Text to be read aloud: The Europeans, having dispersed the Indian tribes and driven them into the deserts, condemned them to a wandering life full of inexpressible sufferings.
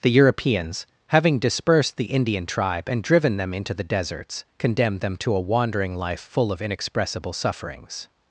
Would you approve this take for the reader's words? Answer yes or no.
no